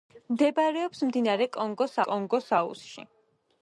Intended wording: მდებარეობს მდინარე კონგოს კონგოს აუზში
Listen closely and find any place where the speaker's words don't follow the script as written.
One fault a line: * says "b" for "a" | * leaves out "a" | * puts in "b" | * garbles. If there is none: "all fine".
all fine